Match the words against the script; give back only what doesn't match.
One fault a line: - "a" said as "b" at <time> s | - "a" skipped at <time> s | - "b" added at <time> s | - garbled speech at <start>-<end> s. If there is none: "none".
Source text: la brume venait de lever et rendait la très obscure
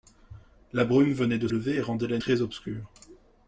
none